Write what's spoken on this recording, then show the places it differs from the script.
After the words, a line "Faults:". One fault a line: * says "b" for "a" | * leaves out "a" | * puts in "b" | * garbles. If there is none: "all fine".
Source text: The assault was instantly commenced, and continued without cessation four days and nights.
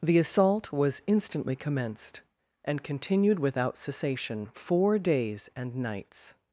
The assault was instantly commenced, and continued without cessation four days and nights.
Faults:
all fine